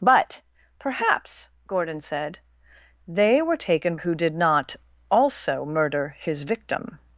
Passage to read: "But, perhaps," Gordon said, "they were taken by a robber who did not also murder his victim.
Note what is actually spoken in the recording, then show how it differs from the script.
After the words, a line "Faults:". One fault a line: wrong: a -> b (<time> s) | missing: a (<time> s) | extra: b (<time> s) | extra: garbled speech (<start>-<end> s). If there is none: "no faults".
"But, perhaps," Gordon said, "they were taken who did not also murder his victim.
Faults:
missing: by a robber (4.0 s)